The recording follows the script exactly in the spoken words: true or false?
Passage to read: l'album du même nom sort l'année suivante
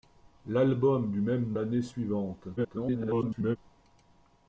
false